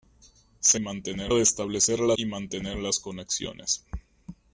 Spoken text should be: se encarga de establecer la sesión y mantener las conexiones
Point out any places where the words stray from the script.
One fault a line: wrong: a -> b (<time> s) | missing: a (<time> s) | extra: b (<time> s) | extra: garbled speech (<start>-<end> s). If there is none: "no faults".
wrong: encarga -> mantener (0.8 s)
missing: sesión (2.2 s)